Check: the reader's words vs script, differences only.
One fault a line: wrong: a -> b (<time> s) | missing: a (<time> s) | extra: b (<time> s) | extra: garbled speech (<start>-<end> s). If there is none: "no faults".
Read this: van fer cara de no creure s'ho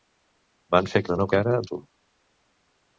missing: cara (1.0 s)
wrong: creure -> cara (1.3 s)